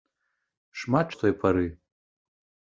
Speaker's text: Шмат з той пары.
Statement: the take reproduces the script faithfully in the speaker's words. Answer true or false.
true